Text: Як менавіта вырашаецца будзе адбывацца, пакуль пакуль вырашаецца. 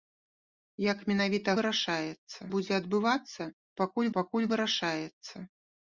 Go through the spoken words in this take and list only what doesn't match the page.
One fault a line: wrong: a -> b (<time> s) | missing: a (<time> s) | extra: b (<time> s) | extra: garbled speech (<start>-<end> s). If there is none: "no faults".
no faults